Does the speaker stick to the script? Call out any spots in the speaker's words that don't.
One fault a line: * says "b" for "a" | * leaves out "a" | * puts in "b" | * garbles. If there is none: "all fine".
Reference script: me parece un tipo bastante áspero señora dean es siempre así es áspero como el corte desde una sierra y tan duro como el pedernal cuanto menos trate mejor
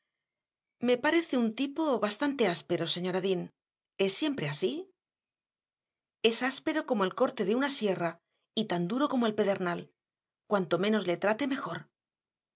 * says "de" for "desde"
* puts in "le"